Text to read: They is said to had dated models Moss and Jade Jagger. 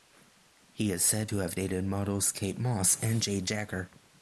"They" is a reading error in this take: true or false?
true